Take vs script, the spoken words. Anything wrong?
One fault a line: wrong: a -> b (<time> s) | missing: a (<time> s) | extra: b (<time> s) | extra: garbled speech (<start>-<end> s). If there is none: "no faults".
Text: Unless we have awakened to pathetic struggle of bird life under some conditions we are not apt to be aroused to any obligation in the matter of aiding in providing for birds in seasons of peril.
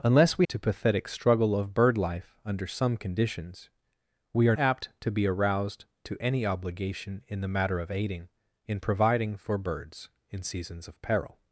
missing: have awakened (0.5 s)
missing: not (4.6 s)